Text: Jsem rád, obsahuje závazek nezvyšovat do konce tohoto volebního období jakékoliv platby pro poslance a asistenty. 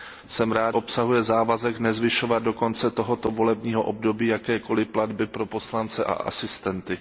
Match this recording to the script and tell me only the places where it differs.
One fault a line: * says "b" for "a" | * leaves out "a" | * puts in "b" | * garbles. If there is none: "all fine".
all fine